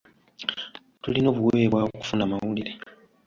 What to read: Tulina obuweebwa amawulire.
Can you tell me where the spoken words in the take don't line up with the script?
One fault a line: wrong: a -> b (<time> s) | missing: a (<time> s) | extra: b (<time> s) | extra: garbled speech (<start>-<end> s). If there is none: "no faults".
extra: okufuna (1.9 s)